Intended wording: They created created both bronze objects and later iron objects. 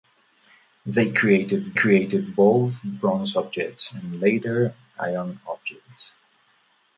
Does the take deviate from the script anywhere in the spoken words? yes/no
no